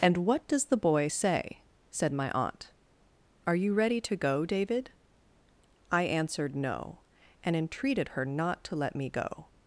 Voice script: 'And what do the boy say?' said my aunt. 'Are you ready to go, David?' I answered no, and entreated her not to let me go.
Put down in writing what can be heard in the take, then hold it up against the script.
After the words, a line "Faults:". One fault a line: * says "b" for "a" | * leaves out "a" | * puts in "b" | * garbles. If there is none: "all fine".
'And what does the boy say?' said my aunt. 'Are you ready to go, David?' I answered no, and entreated her not to let me go.
Faults:
* says "does" for "do"